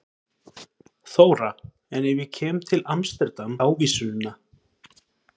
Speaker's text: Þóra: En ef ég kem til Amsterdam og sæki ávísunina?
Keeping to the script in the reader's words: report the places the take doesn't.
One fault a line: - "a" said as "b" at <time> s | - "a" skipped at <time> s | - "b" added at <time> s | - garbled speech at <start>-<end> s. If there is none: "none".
- "og sæki" skipped at 3.5 s